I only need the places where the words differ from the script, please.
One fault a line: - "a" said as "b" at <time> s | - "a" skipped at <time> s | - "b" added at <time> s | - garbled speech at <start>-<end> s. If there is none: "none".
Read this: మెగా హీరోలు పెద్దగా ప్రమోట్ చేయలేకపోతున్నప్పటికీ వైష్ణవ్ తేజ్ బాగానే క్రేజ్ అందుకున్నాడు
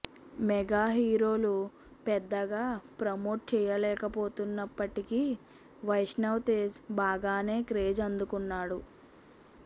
none